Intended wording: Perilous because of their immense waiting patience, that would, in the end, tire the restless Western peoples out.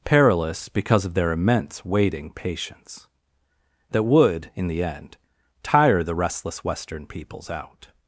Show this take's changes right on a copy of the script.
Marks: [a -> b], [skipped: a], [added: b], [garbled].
Perilous because of their immense waiting patience, that would, in the end, tire the restless Western peoples out.